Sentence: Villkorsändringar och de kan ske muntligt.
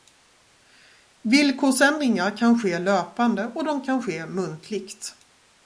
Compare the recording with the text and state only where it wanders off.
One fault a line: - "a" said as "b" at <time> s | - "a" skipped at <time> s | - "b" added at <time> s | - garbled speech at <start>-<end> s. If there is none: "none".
- "kan ske löpande" added at 2.4 s